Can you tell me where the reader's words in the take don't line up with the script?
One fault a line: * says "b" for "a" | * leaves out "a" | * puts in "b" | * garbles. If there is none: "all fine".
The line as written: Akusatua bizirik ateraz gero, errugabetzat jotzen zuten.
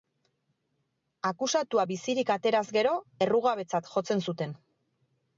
all fine